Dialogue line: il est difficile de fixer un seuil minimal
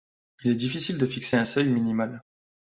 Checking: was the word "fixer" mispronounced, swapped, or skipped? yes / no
no